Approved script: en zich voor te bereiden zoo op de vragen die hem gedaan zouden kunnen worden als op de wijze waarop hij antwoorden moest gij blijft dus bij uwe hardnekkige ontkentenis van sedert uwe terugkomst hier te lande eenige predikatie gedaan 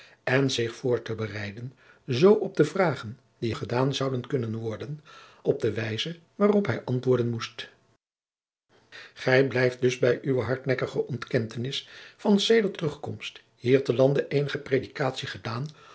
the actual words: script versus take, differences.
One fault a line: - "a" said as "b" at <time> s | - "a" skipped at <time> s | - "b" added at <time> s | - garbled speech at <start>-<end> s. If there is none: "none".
- "hem" skipped at 3.5 s
- "als" skipped at 5.0 s
- "uwe" skipped at 12.8 s